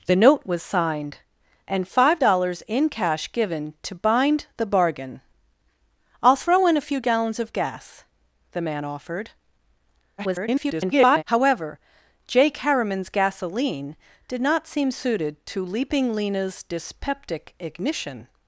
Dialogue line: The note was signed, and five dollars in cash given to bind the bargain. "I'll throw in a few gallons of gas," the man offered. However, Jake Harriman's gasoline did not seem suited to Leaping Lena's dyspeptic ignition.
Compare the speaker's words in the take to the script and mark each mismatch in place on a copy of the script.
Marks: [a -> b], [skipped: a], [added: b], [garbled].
The note was signed, and five dollars in cash given to bind the bargain. "I'll throw in a few gallons of gas," the man offered. [garbled] However, Jake Harriman's gasoline did not seem suited to Leaping Lena's dyspeptic ignition.